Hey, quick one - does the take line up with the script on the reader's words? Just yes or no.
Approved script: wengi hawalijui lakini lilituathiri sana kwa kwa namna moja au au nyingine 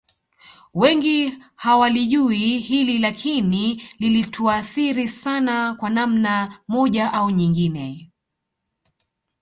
no